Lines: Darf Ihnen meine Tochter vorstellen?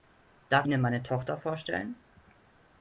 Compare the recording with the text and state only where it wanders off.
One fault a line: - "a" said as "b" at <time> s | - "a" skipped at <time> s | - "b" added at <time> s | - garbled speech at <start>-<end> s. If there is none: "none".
none